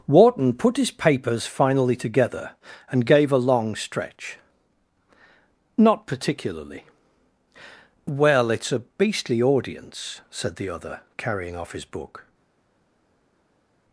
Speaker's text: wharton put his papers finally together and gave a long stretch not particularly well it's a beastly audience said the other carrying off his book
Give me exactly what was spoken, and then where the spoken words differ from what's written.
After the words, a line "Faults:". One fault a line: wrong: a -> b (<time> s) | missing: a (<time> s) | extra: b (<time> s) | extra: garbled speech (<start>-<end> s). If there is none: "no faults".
wharton put his papers finally together and gave a long stretch not particularly well it's a beastly audience said the other carrying off his book
Faults:
no faults